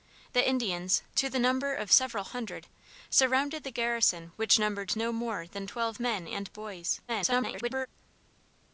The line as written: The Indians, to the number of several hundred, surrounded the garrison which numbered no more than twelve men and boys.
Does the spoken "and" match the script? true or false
true